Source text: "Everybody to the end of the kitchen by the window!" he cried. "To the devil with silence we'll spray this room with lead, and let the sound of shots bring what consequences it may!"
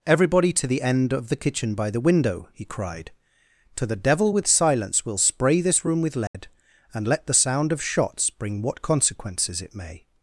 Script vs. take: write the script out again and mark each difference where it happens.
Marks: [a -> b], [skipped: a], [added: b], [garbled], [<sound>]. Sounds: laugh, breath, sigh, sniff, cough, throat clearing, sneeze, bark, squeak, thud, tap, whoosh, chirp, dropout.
"Everybody to the end of the kitchen by the window!" he cried. "To the devil with silence we'll spray this room with lead, [dropout] and let the sound of shots bring what consequences it may!"